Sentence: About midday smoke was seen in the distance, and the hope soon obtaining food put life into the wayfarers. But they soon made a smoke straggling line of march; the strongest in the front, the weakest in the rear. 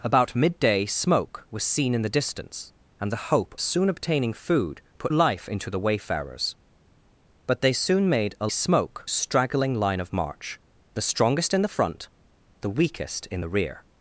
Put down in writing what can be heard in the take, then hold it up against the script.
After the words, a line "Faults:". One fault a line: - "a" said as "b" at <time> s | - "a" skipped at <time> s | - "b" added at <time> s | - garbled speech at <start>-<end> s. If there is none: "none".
About midday smoke was seen in the distance, and the hope soon obtaining food put life into the wayfarers. But they soon made a smoke straggling line of march; the strongest in the front, the weakest in the rear.
Faults:
none